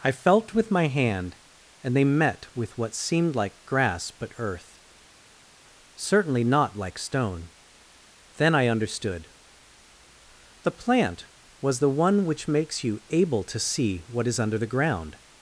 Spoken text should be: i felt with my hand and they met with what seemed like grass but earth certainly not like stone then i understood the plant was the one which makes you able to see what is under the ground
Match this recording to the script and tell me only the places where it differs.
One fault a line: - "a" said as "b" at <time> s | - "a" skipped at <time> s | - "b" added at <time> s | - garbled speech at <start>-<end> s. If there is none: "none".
none